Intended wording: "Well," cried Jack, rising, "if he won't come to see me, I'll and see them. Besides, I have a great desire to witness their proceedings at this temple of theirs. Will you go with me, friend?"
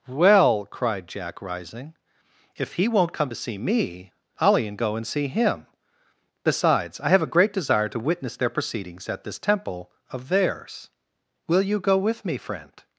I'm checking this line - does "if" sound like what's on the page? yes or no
yes